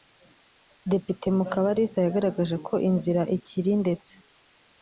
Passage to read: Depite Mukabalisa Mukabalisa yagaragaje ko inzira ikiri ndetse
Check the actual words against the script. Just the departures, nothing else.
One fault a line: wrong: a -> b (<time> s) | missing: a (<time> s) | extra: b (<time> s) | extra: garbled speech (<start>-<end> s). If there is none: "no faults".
missing: Mukabalisa (2.0 s)